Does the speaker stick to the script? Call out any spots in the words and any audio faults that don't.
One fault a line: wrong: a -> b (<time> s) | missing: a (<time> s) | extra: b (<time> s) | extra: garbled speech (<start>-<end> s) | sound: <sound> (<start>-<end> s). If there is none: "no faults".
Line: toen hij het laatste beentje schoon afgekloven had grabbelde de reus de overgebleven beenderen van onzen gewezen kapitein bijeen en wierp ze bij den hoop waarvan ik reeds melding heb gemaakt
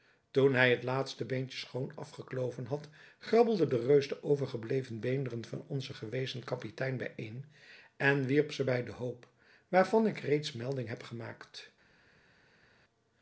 no faults